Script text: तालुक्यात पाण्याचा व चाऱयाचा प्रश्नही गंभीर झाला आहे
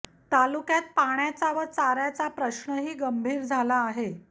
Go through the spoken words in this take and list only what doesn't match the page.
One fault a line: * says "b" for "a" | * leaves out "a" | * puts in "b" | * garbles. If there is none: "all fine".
all fine